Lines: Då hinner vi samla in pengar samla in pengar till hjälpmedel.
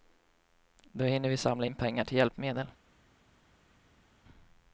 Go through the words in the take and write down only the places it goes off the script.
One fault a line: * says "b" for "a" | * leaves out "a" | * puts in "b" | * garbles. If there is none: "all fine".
* leaves out "samla in pengar"